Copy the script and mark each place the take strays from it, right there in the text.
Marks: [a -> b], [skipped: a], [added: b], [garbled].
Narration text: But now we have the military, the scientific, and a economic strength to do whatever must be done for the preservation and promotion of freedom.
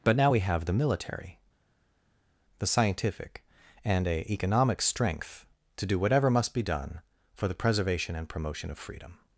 But now we have the military, the scientific, and a economic strength to do whatever must be done for the preservation and promotion of freedom.